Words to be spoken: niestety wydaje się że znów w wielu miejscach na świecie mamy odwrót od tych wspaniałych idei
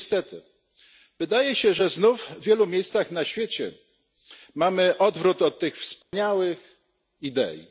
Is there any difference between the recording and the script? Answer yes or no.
no